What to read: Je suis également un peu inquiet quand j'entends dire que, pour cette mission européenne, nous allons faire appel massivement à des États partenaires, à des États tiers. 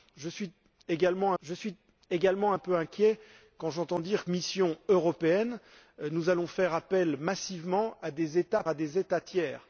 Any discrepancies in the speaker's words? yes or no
yes